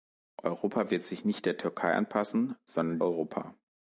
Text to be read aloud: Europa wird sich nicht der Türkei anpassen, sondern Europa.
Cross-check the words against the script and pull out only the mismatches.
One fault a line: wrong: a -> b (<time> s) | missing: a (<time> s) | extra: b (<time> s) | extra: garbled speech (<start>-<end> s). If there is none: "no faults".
no faults